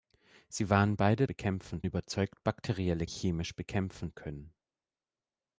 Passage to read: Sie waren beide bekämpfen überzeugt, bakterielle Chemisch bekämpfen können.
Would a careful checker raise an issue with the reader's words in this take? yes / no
no